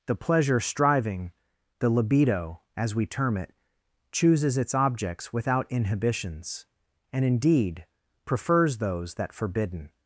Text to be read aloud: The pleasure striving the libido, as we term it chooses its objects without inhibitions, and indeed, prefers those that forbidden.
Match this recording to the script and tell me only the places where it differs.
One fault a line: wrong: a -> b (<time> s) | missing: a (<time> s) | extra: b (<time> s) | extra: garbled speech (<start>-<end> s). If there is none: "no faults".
no faults